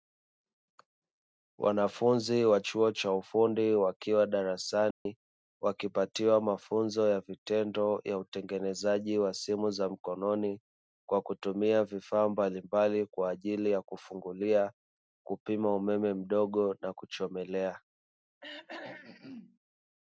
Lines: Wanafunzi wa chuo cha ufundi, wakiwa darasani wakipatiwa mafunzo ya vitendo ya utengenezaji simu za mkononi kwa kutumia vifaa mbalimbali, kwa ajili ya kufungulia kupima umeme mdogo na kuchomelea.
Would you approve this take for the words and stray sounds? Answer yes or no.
no